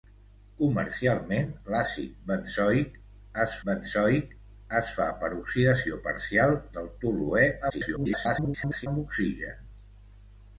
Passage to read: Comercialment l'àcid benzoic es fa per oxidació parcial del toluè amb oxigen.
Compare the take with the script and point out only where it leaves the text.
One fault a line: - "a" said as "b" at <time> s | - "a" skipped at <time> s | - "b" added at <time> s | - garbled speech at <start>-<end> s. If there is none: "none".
- "benzoic es" added at 3.7 s
- garbled speech at 7.7-8.9 s